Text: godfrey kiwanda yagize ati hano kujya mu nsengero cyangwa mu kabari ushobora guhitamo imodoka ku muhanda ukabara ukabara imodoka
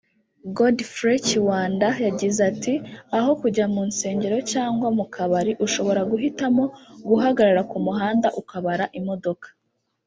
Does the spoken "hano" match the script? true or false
false